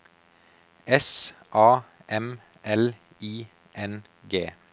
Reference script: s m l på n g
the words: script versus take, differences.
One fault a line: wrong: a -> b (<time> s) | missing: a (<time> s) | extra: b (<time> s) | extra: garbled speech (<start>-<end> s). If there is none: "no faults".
extra: a (1.5 s)
wrong: på -> i (3.2 s)